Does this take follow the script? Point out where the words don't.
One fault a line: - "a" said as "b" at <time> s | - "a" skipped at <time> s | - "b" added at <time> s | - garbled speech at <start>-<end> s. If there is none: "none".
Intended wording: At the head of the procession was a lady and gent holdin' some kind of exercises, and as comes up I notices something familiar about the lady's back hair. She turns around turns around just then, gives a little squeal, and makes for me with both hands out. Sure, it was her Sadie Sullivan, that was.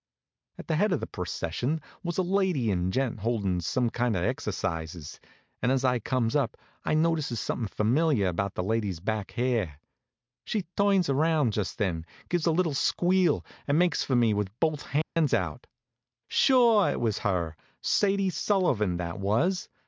- "I" added at 5.8 s
- "turns around" skipped at 11.5 s